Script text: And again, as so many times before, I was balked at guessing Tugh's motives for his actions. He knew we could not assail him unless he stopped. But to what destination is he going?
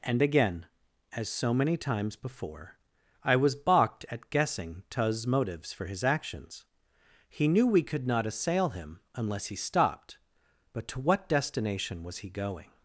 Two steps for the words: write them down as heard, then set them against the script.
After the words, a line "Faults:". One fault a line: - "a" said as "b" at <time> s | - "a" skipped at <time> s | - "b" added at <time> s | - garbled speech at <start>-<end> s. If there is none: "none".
And again, as so many times before, I was balked at guessing Tugh's motives for his actions. He knew we could not assail him unless he stopped. But to what destination was he going?
Faults:
- "is" said as "was" at 12.0 s